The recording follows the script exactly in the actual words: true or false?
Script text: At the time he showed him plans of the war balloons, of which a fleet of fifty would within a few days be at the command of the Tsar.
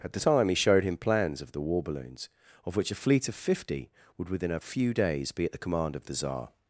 true